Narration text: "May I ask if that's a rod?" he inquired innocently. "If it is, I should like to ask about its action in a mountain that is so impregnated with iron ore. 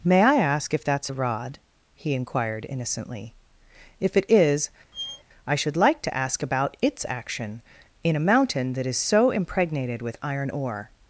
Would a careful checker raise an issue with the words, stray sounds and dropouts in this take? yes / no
yes